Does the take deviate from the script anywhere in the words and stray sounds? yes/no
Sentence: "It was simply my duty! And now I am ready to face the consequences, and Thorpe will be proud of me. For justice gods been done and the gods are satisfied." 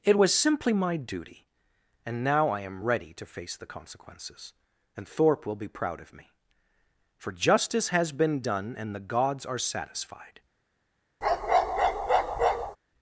yes